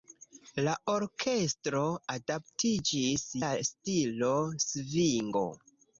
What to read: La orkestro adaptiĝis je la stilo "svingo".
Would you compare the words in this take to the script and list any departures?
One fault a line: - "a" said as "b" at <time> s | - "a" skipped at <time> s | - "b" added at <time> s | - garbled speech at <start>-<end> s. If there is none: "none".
- "je" skipped at 3.3 s